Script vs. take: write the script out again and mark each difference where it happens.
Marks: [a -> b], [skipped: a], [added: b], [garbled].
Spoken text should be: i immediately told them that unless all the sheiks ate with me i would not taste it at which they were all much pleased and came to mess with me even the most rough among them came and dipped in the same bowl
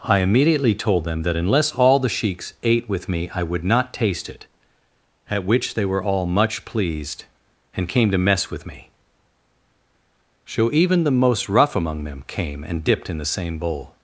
i immediately told them that unless all the sheiks ate with me i would not taste it at which they were all much pleased and came to mess with me [added: so] even the most rough among them came and dipped in the same bowl